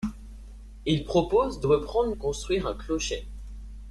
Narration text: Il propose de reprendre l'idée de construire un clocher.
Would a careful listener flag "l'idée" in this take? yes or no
yes